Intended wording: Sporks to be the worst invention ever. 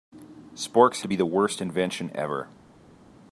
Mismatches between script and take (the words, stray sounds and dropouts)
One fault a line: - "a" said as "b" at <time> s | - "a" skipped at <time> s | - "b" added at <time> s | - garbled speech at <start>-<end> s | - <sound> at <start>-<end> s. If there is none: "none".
none